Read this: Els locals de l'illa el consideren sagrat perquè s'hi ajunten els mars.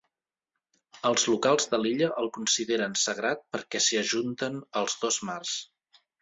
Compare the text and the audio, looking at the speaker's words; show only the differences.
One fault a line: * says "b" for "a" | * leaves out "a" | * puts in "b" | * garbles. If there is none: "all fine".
* puts in "dos"